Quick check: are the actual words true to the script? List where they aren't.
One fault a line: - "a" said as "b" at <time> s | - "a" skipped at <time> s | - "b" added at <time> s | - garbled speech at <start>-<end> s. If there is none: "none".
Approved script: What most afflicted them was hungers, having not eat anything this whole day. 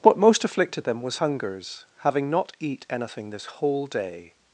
none